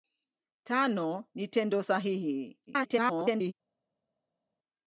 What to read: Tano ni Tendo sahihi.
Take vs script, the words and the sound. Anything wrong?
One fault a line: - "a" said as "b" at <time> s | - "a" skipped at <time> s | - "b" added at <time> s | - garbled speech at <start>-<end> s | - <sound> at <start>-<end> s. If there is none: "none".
- garbled speech at 2.7-3.5 s